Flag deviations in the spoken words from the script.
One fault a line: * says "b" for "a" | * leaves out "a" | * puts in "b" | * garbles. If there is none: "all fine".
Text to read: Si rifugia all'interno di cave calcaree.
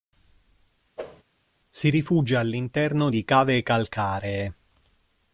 all fine